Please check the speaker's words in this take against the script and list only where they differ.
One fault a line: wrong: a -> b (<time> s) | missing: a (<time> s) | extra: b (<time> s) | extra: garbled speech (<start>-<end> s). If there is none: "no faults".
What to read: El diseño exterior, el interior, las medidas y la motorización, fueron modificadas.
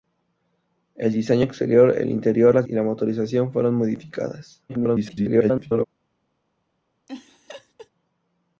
missing: medidas (2.7 s)
extra: garbled speech (4.7-5.9 s)